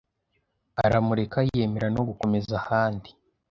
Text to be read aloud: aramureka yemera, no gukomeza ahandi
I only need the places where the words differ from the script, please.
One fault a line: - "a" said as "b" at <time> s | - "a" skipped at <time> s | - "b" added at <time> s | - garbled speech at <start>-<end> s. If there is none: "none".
none